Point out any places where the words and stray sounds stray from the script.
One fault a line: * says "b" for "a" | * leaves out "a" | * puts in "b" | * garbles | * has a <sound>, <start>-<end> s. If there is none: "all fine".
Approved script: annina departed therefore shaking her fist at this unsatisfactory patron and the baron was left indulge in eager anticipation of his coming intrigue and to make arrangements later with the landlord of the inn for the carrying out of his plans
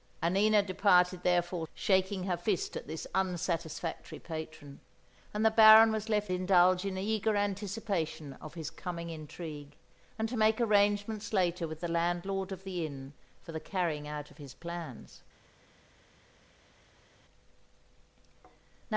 all fine